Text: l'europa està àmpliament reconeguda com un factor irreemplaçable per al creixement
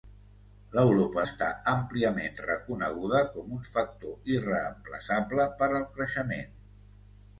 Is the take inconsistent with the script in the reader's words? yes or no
no